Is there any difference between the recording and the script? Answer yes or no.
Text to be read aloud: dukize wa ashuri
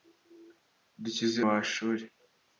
no